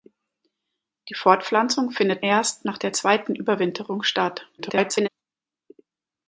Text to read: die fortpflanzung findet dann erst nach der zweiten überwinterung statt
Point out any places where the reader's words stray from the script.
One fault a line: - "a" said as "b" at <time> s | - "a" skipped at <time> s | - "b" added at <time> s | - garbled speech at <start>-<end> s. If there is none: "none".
- "dann" skipped at 2.2 s
- garbled speech at 4.6-5.1 s